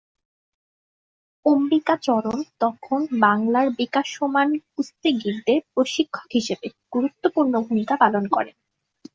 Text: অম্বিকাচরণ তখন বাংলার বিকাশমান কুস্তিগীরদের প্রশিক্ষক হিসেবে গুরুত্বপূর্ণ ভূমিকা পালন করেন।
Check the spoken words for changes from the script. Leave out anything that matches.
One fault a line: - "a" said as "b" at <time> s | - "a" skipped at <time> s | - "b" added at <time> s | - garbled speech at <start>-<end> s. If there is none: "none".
none